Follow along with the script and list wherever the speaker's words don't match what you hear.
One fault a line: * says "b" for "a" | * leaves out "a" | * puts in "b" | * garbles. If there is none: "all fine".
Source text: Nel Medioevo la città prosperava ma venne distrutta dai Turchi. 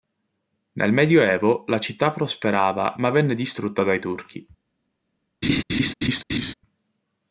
all fine